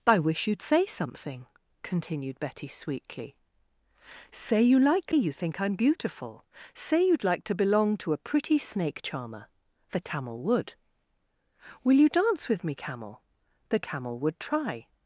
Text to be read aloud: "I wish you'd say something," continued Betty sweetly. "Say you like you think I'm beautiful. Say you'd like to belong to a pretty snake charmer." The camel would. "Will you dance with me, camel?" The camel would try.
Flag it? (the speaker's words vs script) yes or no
no